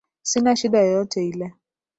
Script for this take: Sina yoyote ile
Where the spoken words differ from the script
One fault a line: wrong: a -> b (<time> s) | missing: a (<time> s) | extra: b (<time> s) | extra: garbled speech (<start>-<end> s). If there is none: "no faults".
extra: shida (0.5 s)